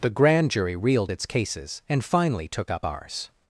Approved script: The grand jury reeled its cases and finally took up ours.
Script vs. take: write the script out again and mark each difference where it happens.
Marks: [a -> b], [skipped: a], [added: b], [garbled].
The grand jury reeled its cases and finally took up ours.